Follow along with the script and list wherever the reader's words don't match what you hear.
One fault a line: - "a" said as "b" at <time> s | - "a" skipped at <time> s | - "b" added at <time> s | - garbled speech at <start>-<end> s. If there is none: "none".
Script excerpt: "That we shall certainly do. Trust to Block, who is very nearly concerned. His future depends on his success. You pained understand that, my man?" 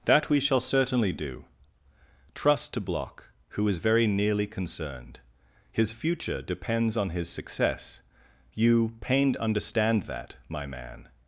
none